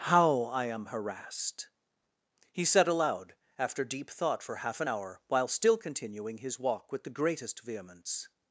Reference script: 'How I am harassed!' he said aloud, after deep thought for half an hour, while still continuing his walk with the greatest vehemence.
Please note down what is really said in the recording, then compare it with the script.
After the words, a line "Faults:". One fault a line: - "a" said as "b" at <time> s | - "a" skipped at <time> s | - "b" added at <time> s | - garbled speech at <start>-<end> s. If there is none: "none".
'How I am harassed!' he said aloud, after deep thought for half an hour, while still continuing his walk with the greatest vehemence.
Faults:
none